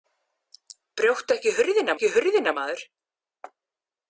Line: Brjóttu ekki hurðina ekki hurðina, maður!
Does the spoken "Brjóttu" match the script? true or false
true